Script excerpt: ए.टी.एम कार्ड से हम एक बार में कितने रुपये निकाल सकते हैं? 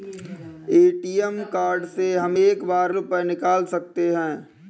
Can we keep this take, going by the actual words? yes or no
no